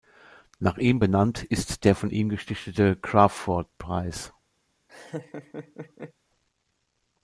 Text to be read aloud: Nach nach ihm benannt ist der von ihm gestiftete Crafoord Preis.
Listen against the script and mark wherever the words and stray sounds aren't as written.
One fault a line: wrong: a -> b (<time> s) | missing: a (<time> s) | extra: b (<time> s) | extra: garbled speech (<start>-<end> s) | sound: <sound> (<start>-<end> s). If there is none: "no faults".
missing: nach (0.8 s)
sound: laugh (4.9-6.1 s)